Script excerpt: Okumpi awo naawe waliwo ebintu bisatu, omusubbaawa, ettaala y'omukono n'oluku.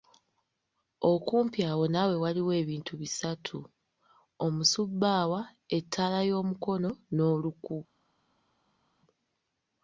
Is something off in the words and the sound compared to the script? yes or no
no